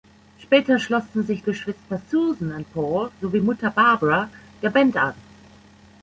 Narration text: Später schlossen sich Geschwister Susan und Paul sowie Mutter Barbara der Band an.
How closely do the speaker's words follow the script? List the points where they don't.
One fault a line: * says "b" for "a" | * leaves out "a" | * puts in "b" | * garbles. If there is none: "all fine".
all fine